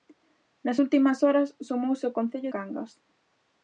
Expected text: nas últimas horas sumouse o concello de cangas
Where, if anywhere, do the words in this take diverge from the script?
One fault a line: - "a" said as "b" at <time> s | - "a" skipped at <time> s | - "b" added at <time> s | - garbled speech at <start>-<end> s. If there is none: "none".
- "de" skipped at 2.5 s